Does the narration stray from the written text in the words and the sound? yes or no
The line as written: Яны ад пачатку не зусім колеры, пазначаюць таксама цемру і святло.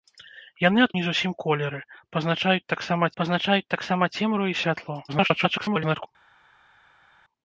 yes